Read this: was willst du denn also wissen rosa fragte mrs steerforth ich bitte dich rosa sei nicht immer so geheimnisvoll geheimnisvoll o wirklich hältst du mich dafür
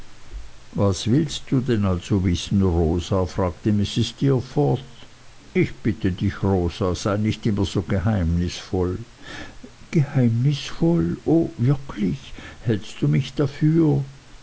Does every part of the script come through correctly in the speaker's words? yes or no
yes